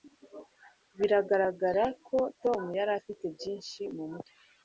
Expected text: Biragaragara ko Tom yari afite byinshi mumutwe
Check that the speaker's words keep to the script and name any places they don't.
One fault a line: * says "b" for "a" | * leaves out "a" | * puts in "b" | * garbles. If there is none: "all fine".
all fine